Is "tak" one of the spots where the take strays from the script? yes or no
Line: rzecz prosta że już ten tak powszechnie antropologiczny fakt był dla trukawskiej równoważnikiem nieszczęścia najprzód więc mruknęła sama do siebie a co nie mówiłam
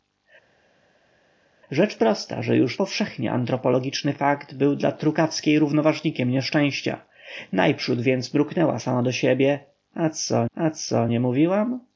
yes